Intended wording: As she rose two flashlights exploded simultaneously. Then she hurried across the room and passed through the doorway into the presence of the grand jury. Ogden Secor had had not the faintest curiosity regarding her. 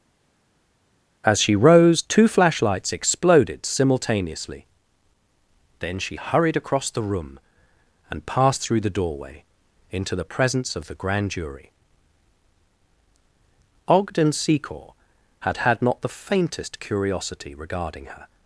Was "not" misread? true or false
false